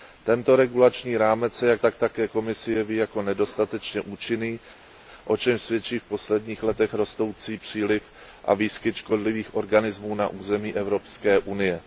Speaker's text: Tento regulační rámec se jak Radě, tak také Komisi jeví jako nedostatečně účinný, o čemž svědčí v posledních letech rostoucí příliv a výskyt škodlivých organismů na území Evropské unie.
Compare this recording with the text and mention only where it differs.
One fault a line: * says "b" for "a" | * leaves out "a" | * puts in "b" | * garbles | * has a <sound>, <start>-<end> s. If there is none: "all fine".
* leaves out "Radě"